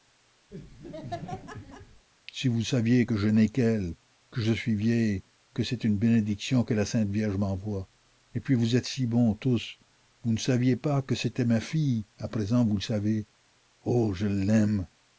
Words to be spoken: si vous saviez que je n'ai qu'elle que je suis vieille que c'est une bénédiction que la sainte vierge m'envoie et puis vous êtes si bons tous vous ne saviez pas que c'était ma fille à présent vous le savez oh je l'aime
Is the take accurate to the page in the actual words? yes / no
yes